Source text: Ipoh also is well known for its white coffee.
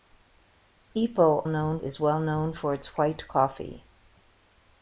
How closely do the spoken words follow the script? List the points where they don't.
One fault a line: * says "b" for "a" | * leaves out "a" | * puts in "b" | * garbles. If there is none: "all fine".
* says "known" for "also"